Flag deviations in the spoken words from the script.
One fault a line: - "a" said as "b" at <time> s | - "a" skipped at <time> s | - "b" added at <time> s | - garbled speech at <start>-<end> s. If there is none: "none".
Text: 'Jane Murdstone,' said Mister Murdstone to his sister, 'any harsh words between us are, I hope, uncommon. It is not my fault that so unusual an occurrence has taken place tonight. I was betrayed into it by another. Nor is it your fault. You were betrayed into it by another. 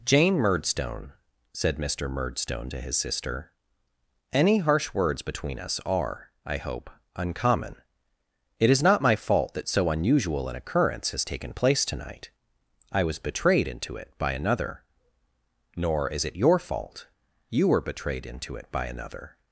none